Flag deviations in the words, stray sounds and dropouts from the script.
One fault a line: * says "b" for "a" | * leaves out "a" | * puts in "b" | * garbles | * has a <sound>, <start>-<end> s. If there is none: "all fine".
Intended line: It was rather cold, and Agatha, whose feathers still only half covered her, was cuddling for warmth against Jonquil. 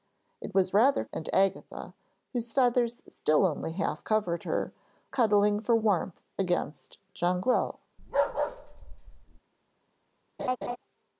* leaves out "cold"
* leaves out "was"
* has a bark, 8.0-9.4 s
* has a laugh, 10.4-10.8 s